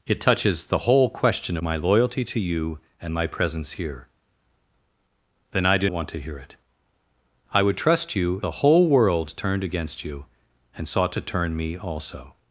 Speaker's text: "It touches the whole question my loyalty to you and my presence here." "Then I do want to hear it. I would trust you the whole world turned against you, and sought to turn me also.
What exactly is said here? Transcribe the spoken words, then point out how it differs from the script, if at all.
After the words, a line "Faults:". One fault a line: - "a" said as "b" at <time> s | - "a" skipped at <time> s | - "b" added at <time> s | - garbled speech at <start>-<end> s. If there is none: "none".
"It touches the whole question my loyalty to you and my presence here." "Then I do want to hear it. I would trust you the whole world turned against you, and sought to turn me also.
Faults:
none